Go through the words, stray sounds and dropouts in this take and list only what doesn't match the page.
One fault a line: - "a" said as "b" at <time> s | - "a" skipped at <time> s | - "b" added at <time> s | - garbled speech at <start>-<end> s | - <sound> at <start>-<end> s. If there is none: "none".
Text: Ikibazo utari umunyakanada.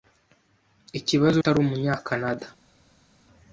none